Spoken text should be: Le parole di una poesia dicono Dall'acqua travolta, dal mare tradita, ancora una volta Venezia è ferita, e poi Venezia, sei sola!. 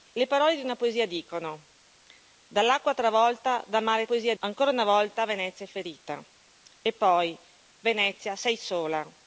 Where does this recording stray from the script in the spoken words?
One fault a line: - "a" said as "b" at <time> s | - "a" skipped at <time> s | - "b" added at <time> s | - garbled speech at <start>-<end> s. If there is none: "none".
- "tradita" said as "poesia" at 4.0 s